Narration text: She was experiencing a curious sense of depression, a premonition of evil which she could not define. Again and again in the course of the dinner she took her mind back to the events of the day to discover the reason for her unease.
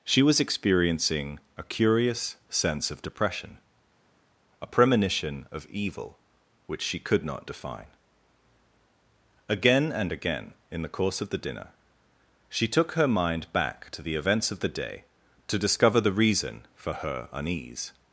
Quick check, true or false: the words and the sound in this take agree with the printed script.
true